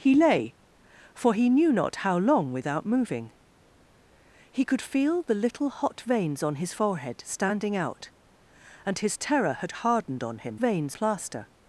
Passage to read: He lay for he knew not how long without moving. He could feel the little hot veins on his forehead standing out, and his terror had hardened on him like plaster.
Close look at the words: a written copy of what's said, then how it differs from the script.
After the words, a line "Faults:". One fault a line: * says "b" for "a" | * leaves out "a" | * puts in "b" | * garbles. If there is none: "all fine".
He lay for he knew not how long without moving. He could feel the little hot veins on his forehead standing out, and his terror had hardened on him veins plaster.
Faults:
* says "veins" for "like"